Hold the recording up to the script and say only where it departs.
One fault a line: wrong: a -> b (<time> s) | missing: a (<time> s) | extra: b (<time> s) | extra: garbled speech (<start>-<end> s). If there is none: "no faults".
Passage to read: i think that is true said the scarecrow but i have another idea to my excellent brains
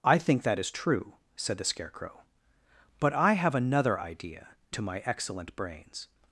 no faults